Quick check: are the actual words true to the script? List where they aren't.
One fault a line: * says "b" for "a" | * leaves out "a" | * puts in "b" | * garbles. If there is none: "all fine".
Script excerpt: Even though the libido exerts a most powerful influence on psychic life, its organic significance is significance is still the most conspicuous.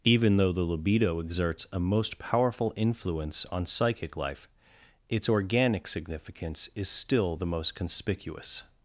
* leaves out "significance is"